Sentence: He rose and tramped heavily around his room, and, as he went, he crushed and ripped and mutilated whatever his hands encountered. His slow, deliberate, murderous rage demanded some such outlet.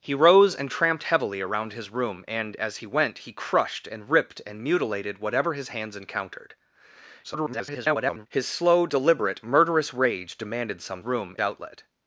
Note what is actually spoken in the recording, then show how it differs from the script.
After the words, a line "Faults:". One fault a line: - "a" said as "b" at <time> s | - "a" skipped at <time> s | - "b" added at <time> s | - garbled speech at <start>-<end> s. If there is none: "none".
He rose and tramped heavily around his room, and, as he went, he crushed and ripped and mutilated whatever his hands encountered. [garbled] His slow, deliberate, murderous rage demanded some room outlet.
Faults:
- garbled speech at 7.2-8.3 s
- "such" said as "room" at 11.0 s